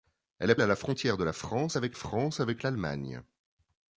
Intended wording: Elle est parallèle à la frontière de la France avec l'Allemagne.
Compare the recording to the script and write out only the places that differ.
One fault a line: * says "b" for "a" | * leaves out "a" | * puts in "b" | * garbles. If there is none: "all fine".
* leaves out "parallèle"
* puts in "France avec"